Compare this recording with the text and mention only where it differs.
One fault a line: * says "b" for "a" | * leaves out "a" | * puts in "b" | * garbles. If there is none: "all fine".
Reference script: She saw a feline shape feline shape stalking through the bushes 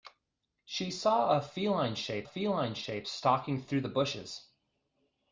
all fine